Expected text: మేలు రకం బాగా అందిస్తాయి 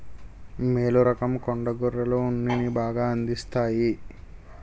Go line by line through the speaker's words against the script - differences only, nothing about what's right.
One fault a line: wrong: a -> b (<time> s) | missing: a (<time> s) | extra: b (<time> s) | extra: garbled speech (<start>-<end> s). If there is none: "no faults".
extra: కొండ గొర్రెలు ఉన్నిని (1.4 s)